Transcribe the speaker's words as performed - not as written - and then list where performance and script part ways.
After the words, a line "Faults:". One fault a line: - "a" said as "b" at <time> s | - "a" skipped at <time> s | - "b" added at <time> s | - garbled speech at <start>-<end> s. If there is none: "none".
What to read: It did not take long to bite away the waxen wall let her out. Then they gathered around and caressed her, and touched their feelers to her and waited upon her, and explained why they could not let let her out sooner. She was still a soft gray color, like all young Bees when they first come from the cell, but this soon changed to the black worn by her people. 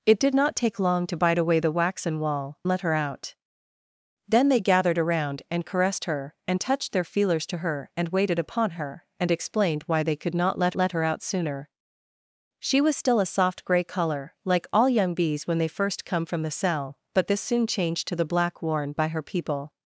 It did not take long to bite away the waxen wall let her out. Then they gathered around and caressed her, and touched their feelers to her and waited upon her, and explained why they could not let let her out sooner. She was still a soft gray color, like all young Bees when they first come from the cell, but this soon changed to the black worn by her people.
Faults:
none